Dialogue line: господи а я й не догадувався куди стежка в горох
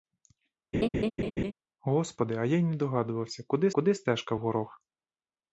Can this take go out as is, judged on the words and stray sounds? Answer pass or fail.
fail